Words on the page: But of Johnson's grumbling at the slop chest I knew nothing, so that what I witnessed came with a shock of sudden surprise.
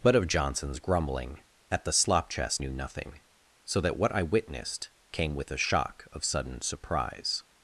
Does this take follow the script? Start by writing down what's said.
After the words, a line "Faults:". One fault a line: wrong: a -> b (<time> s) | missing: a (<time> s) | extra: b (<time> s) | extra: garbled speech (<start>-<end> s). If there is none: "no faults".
But of Johnson's grumbling at the slop chest knew nothing, so that what I witnessed came with a shock of sudden surprise.
Faults:
missing: I (2.6 s)